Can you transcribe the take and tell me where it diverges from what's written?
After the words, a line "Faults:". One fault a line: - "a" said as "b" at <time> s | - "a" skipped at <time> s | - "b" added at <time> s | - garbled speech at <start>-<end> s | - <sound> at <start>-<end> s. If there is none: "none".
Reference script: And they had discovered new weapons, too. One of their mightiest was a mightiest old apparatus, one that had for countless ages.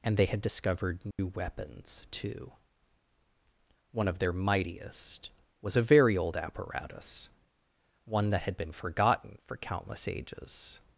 And they had discovered new weapons, too. One of their mightiest was a very old apparatus, one that had been forgotten for countless ages.
Faults:
- dropout at 1.1-1.2 s
- "mightiest" said as "very" at 5.8 s
- "been forgotten" added at 8.6 s